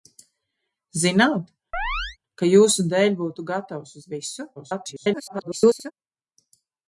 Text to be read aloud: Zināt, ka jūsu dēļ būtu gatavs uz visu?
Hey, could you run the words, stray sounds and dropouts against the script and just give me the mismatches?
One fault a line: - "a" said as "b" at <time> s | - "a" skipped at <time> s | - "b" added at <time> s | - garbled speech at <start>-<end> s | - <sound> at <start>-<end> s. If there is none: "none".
- chirp at 1.7-2.2 s
- garbled speech at 4.6-5.9 s